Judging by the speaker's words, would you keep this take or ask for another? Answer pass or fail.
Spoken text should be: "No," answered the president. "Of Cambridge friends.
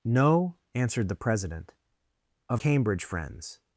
pass